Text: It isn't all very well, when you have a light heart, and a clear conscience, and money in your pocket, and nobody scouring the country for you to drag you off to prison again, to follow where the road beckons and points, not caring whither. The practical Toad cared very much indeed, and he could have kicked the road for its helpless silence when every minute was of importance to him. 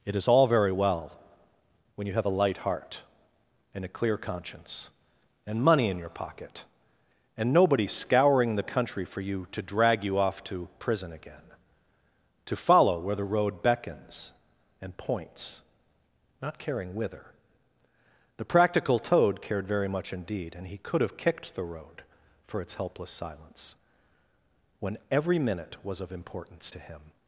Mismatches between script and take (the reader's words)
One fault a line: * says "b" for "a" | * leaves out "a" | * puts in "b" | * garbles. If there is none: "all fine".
* says "is" for "isn't"